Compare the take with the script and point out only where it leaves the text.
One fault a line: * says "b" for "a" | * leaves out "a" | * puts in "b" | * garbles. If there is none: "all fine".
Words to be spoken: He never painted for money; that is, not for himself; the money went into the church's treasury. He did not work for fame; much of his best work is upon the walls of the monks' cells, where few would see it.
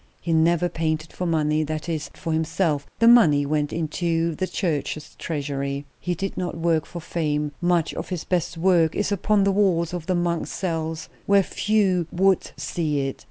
* leaves out "not"